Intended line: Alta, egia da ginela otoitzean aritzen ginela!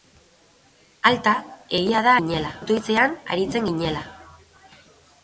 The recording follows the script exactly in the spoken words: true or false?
true